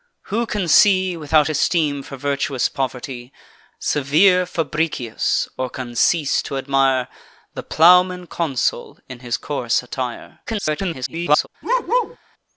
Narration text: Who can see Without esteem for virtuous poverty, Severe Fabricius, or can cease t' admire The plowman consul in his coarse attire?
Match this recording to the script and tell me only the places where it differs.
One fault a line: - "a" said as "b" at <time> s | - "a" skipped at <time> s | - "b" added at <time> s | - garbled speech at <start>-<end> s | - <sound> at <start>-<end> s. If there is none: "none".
- garbled speech at 10.5-11.5 s
- bark at 11.6-12.2 s